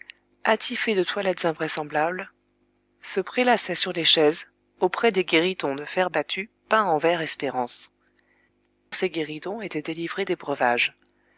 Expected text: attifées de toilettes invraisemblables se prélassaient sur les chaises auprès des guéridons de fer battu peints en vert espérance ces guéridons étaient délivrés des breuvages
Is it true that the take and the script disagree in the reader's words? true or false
false